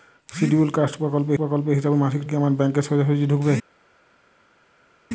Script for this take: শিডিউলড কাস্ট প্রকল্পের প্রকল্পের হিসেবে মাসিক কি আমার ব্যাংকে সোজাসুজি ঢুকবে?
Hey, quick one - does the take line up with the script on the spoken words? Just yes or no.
yes